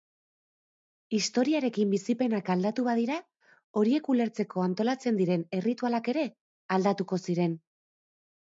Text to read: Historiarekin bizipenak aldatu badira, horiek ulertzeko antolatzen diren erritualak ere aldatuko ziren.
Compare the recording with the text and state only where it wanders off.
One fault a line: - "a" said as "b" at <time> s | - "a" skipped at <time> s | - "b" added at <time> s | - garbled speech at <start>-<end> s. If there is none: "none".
none